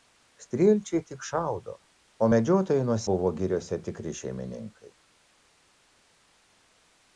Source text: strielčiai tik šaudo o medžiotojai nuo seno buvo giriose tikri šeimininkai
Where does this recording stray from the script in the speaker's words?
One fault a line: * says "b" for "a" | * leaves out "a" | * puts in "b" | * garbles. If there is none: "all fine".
* leaves out "seno"